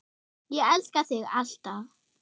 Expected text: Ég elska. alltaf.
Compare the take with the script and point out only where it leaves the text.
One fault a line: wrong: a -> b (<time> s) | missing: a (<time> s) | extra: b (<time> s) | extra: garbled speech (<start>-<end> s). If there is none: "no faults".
extra: þig (1.1 s)